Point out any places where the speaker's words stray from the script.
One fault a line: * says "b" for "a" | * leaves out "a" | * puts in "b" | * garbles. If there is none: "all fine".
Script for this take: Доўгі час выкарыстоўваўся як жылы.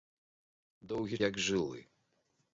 * leaves out "час выкарыстоўваўся"